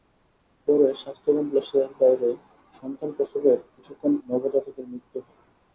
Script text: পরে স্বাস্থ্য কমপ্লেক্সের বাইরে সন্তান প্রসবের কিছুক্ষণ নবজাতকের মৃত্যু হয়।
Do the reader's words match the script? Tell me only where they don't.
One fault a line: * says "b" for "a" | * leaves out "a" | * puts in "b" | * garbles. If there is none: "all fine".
all fine